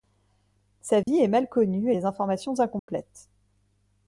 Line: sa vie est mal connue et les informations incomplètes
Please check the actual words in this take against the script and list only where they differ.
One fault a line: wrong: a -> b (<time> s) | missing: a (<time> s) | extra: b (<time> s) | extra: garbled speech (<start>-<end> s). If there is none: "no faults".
no faults